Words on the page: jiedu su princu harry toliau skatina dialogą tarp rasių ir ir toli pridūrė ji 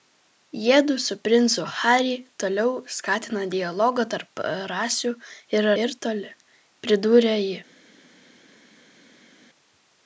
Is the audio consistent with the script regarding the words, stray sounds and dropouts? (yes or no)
yes